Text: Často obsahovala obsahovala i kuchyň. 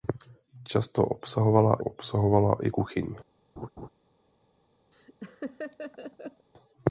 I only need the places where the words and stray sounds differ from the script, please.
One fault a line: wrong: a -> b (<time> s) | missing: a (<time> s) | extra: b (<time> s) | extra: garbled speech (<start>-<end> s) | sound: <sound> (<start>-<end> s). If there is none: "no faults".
sound: laugh (3.6-3.9 s)
sound: laugh (4.9-6.5 s)